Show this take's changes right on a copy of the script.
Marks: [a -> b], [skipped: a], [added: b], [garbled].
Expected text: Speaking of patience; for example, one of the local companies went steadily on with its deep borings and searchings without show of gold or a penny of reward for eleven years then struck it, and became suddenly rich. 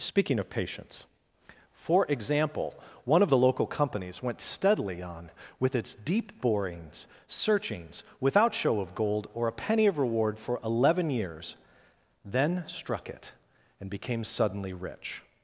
Speaking of patience; for example, one of the local companies went steadily on with its deep borings [skipped: and] searchings without show of gold or a penny of reward for eleven years then struck it, and became suddenly rich.